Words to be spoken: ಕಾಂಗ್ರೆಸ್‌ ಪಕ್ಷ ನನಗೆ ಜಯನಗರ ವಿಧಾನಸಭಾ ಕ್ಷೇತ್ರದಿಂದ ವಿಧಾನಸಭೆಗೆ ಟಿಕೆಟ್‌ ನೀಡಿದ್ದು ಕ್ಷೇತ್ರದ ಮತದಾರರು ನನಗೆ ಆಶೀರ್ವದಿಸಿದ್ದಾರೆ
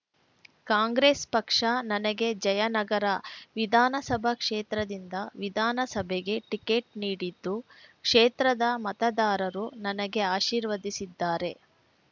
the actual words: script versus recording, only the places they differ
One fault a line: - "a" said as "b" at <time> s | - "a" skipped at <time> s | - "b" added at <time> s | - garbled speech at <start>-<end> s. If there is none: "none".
none